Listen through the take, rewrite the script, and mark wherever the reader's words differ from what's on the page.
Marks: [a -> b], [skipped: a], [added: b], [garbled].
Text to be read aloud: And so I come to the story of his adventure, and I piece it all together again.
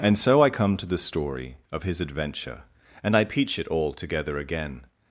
And so I come to the story of his adventure, and I [piece -> peach] it all together again.